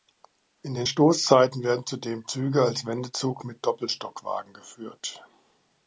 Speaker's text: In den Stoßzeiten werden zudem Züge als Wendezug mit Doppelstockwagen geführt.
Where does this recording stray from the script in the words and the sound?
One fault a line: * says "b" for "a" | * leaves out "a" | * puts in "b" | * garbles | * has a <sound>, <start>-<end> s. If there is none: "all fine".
all fine